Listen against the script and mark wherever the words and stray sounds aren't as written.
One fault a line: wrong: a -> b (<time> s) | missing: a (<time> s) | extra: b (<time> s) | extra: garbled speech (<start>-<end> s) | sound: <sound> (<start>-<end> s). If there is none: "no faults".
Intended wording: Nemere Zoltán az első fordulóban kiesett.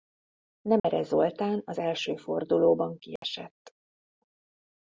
sound: dropout (0.8-0.8 s)
sound: dropout (3.2-3.2 s)